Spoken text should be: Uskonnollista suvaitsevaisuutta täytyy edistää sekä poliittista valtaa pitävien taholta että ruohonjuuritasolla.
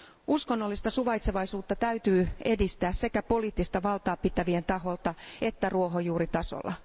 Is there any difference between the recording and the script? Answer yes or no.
no